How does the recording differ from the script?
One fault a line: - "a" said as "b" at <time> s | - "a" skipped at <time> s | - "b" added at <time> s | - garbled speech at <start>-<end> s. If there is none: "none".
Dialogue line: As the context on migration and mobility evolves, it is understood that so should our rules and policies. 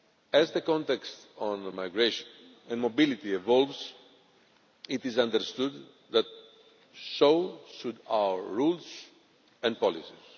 none